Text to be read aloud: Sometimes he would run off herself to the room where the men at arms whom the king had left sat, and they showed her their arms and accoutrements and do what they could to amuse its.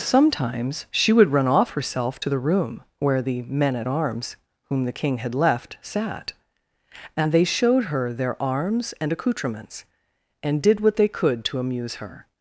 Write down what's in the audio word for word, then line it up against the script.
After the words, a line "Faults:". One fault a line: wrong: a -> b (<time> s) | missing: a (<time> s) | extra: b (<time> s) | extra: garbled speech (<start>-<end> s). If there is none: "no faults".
Sometimes she would run off herself to the room where the men at arms whom the king had left sat, and they showed her their arms and accoutrements and did what they could to amuse her.
Faults:
wrong: he -> she (0.9 s)
wrong: do -> did (10.6 s)
wrong: its -> her (11.9 s)